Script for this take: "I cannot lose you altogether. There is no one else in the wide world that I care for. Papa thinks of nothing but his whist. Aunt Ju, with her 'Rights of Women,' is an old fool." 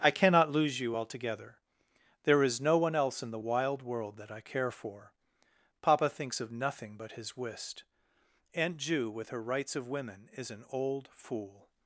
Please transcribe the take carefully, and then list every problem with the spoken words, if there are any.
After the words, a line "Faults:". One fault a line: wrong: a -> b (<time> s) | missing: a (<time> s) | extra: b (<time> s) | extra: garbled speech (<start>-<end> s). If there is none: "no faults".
"I cannot lose you altogether. There is no one else in the wild world that I care for. Papa thinks of nothing but his whist. Aunt Ju, with her 'Rights of Women,' is an old fool."
Faults:
wrong: wide -> wild (3.4 s)